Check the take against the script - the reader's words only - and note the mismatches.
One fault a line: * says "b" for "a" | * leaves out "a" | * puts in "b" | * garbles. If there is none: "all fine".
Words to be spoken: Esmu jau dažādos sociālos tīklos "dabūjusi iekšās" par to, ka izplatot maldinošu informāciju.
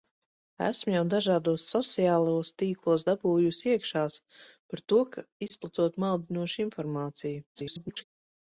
* garbles